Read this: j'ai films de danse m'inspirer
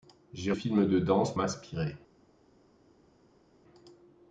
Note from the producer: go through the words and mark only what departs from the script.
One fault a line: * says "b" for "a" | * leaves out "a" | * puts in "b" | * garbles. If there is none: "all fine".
all fine